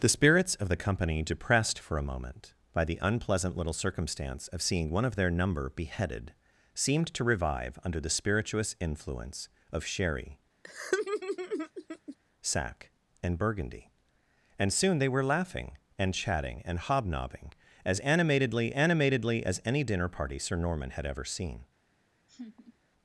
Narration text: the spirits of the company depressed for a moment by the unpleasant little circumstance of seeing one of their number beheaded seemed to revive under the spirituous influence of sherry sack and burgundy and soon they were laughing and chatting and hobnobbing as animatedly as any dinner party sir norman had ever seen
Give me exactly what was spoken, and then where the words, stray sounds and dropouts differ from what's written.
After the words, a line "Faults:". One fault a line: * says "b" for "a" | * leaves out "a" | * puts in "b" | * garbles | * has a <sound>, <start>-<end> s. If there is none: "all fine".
the spirits of the company depressed for a moment by the unpleasant little circumstance of seeing one of their number beheaded seemed to revive under the spirituous influence of sherry sack and burgundy and soon they were laughing and chatting and hobnobbing as animatedly animatedly as any dinner party sir norman had ever seen
Faults:
* has a laugh, 10.6-12.2 s
* puts in "animatedly"
* has a laugh, 22.3-22.7 s